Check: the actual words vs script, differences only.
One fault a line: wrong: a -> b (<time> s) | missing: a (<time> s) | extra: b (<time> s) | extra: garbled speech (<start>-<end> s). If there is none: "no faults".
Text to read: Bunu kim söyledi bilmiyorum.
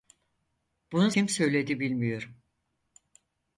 no faults